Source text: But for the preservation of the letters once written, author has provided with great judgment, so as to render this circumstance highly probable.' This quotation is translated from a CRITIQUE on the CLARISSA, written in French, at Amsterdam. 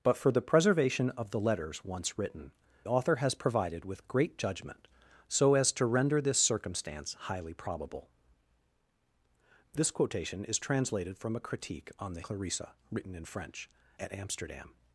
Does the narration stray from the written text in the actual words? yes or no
no